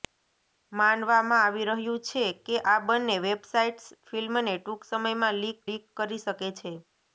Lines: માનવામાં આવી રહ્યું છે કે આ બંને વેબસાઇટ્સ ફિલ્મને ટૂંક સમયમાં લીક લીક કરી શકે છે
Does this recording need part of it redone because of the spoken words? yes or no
no